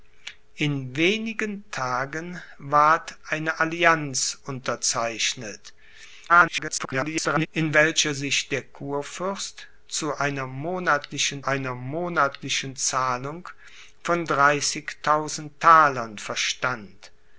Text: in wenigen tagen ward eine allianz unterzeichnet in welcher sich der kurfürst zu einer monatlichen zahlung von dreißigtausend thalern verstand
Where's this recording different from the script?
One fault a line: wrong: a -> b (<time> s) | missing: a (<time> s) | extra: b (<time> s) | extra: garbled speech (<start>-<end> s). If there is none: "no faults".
extra: garbled speech (6.3-7.5 s)
extra: einer monatlichen (11.4 s)